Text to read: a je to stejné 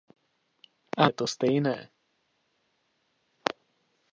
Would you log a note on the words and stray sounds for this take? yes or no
no